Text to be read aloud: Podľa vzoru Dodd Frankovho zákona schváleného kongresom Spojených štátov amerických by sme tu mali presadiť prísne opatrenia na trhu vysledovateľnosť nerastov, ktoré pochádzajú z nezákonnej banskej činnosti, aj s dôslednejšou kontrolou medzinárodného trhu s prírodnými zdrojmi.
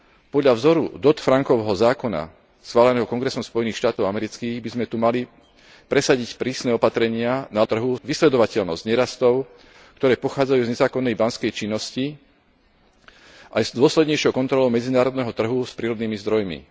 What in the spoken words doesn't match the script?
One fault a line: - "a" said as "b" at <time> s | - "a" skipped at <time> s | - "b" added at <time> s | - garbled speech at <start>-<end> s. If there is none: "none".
none